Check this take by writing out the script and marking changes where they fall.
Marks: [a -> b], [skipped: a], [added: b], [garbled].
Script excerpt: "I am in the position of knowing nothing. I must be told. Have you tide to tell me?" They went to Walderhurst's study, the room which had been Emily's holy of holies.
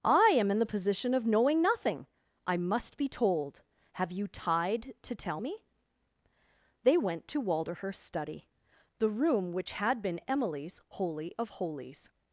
"I am in the position of knowing nothing. I must be told. Have you tide to tell me?" They went to Walderhurst's study, the room which had been Emily's holy of holies.